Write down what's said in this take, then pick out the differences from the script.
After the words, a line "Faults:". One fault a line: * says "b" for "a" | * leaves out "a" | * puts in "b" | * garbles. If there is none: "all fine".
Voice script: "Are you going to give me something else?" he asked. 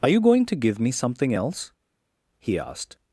"Are you going to give me something else?" he asked.
Faults:
all fine